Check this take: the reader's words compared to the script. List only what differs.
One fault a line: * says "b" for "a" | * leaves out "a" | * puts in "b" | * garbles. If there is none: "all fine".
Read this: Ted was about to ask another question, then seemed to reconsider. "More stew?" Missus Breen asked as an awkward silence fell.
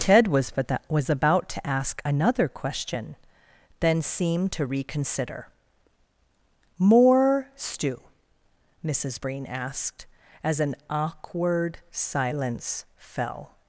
* puts in "was"